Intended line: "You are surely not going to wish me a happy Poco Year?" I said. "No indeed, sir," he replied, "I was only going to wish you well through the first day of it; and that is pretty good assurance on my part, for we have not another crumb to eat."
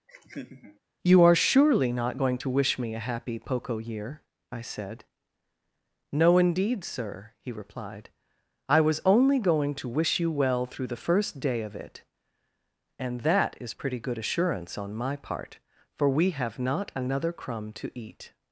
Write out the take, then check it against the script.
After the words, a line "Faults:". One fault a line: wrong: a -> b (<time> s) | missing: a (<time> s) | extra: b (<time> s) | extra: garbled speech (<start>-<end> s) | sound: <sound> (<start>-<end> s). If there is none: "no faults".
"You are surely not going to wish me a happy Poco Year?" I said. "No indeed, sir," he replied, "I was only going to wish you well through the first day of it; and that is pretty good assurance on my part, for we have not another crumb to eat."
Faults:
sound: laugh (0.1-0.8 s)